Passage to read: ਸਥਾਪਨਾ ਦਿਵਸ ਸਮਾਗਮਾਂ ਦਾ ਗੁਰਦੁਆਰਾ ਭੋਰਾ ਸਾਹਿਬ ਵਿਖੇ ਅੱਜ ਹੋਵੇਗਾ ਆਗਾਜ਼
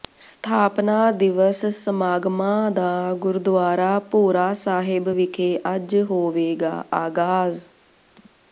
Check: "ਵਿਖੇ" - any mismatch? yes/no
no